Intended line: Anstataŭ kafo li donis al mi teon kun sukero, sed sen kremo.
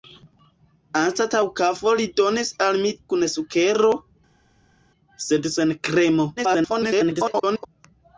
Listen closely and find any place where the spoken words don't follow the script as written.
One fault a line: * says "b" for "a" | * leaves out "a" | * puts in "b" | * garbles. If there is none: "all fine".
* leaves out "teon"
* garbles